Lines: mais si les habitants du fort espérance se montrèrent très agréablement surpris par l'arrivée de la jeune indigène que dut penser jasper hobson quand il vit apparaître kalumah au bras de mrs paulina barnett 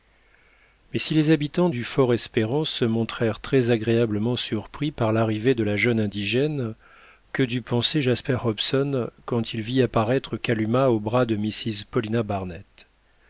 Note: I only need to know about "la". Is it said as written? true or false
true